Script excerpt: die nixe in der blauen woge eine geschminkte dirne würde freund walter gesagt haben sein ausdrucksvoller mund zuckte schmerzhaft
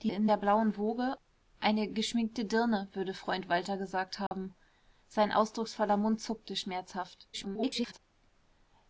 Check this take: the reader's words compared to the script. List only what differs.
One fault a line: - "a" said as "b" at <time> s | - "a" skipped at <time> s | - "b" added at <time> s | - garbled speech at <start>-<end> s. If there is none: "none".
- "nixe" skipped at 0.1 s
- garbled speech at 7.3-8.0 s